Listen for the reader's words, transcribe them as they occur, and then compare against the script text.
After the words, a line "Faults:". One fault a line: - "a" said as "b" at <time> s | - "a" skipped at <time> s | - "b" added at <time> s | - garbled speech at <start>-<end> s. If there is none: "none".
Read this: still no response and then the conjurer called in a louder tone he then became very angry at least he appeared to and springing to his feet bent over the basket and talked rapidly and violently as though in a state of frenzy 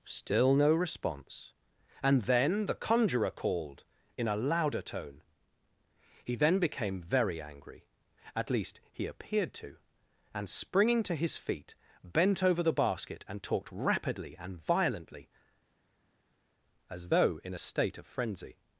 still no response and then the conjurer called in a louder tone he then became very angry at least he appeared to and springing to his feet bent over the basket and talked rapidly and violently as though in a state of frenzy
Faults:
none